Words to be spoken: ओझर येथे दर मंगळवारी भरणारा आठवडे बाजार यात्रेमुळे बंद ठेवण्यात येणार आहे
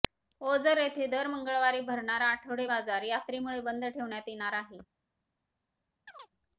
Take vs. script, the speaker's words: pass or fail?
pass